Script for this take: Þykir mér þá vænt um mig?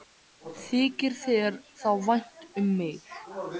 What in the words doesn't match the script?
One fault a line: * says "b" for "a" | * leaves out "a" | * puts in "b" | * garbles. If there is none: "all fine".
* says "þér" for "mér"